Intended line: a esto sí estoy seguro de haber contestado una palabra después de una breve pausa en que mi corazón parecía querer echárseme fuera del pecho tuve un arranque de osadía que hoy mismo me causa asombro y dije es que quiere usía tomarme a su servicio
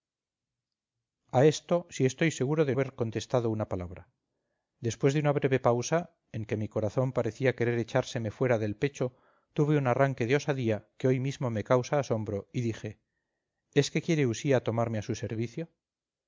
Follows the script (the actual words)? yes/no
yes